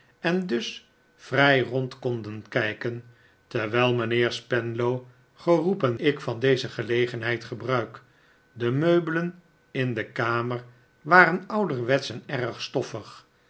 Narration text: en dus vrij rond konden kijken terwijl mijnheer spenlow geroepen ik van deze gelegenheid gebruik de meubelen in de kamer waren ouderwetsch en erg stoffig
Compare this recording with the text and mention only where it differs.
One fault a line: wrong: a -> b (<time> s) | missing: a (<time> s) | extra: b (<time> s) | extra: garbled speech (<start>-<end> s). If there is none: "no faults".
no faults